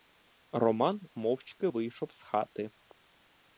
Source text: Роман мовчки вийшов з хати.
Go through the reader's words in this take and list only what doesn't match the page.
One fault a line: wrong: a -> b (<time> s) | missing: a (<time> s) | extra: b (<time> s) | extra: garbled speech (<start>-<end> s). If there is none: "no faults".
no faults